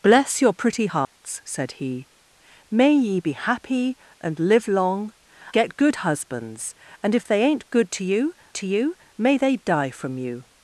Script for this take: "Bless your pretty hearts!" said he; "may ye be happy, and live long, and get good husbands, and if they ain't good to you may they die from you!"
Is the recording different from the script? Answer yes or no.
yes